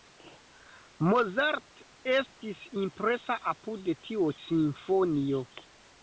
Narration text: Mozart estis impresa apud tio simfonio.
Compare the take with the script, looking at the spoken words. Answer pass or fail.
pass